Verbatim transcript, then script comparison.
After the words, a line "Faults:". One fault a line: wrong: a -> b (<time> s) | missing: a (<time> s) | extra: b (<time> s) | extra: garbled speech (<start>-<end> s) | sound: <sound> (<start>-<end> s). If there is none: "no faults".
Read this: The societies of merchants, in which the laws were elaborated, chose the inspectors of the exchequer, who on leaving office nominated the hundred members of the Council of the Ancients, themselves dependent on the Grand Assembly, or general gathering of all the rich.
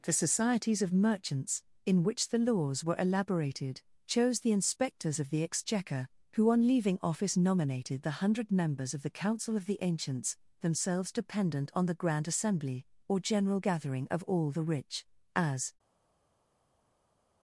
The societies of merchants, in which the laws were elaborated, chose the inspectors of the exchequer, who on leaving office nominated the hundred members of the Council of the Ancients, themselves dependent on the Grand Assembly, or general gathering of all the rich. As
Faults:
extra: As (15.4 s)